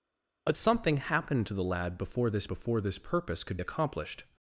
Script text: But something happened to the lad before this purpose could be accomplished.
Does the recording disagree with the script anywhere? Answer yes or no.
yes